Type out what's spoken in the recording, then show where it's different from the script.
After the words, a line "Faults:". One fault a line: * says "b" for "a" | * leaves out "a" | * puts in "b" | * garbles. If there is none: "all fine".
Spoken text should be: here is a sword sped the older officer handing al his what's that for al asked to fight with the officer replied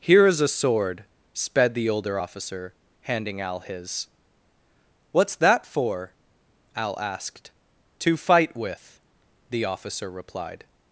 here is a sword sped the older officer handing al his what's that for al asked to fight with the officer replied
Faults:
all fine